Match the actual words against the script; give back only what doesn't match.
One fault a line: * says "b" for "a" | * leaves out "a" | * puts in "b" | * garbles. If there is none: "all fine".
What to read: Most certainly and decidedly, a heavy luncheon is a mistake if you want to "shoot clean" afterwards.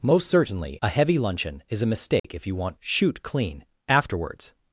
* leaves out "and decidedly"
* leaves out "to"